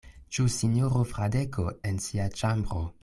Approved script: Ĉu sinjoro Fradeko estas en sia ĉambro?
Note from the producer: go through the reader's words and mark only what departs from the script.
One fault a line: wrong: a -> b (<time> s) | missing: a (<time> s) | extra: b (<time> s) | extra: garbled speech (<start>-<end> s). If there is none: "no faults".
missing: estas (1.7 s)